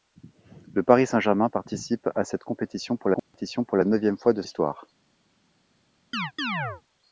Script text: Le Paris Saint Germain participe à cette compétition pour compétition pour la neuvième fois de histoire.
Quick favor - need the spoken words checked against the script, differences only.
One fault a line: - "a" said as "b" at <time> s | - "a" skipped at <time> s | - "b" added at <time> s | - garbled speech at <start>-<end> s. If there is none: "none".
none